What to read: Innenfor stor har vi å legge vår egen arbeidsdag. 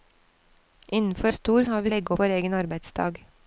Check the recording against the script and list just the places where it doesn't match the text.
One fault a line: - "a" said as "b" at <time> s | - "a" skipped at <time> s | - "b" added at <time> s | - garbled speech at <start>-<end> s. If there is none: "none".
none